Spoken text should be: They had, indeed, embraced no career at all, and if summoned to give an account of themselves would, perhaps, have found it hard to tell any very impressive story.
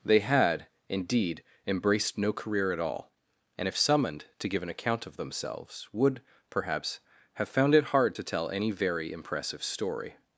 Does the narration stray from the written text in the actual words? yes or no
no